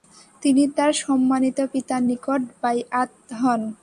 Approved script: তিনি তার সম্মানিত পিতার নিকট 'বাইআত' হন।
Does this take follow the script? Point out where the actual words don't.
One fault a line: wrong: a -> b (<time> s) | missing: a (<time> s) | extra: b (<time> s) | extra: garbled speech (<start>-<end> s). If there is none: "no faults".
no faults